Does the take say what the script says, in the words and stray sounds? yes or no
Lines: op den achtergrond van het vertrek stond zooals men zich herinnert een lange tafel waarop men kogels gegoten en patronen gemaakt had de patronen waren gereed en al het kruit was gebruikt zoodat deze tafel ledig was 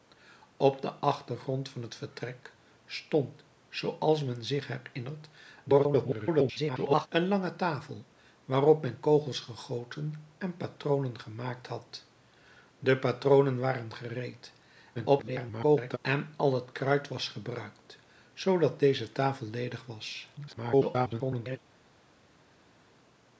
no